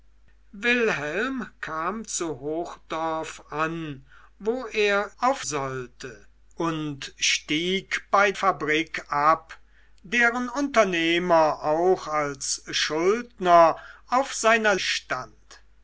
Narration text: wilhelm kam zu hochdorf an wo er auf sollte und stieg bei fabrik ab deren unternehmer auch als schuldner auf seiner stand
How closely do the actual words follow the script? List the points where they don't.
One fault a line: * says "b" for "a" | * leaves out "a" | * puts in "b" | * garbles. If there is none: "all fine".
all fine